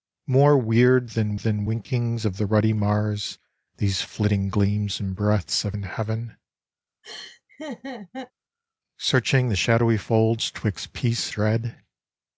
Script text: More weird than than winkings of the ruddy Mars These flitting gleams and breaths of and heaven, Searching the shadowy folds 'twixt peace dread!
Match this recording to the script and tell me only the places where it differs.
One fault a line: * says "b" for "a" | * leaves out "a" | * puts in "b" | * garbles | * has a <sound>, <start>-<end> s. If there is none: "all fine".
* has a laugh, 7.0-8.3 s